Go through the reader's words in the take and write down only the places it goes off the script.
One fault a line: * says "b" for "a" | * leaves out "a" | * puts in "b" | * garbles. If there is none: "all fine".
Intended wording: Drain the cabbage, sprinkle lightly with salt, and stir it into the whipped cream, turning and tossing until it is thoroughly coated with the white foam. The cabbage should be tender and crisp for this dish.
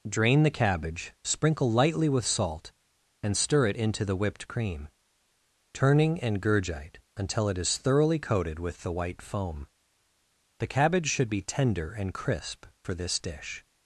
* says "gurgite" for "tossing"